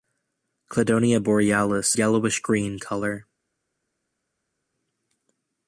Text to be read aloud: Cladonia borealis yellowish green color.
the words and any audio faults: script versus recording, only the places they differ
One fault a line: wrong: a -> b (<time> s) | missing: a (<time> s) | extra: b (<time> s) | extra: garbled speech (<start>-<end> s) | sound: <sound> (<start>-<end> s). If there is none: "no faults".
no faults